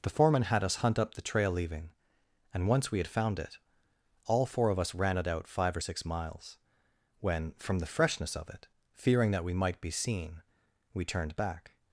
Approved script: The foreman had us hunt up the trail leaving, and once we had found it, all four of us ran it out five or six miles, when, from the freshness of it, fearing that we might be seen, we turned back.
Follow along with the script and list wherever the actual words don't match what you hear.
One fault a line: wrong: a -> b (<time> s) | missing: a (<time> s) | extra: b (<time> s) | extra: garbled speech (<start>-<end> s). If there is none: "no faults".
no faults